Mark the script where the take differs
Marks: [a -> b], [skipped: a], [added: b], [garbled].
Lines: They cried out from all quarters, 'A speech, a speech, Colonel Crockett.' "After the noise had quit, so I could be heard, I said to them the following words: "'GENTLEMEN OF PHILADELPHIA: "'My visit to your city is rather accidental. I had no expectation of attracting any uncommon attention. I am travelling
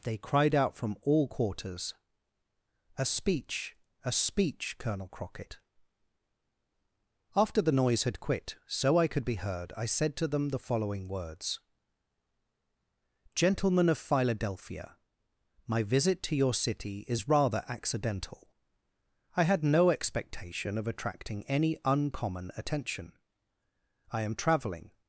They cried out from all quarters, 'A speech, a speech, Colonel Crockett.' "After the noise had quit, so I could be heard, I said to them the following words: "'GENTLEMEN OF PHILADELPHIA: "'My visit to your city is rather accidental. I had no expectation of attracting any uncommon attention. I am travelling